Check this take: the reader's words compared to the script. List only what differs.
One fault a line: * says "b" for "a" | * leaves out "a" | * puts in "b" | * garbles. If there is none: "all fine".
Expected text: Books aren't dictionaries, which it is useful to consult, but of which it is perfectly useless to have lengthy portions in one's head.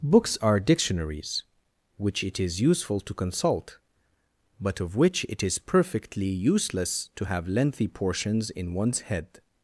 * says "are" for "aren't"